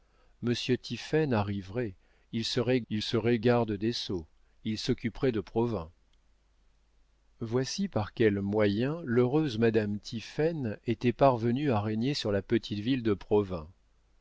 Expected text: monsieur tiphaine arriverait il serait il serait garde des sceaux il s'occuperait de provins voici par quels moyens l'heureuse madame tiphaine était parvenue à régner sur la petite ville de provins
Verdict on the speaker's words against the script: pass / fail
pass